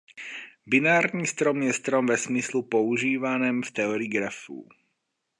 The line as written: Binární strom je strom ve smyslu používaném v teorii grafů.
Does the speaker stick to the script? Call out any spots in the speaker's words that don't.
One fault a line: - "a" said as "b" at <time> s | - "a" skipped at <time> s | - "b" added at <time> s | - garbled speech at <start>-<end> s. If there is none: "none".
none